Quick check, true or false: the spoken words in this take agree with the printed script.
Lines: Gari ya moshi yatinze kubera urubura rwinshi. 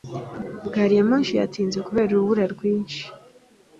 true